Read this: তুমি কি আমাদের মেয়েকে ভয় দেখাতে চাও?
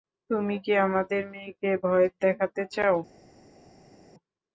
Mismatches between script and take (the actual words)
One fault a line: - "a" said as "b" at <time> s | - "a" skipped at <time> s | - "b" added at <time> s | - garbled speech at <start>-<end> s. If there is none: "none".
none